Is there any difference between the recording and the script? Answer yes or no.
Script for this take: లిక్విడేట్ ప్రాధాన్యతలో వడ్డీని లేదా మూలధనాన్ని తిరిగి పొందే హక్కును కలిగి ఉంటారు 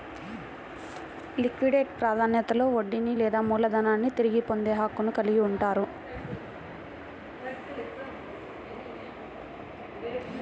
no